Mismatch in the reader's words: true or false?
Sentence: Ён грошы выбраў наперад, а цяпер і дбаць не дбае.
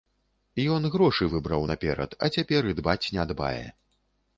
false